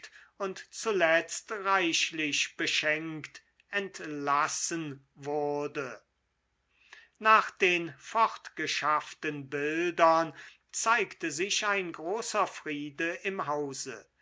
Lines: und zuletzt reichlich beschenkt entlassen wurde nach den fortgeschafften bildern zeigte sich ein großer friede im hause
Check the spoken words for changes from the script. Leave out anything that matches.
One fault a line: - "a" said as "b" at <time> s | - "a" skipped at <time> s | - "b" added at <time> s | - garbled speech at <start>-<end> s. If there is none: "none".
none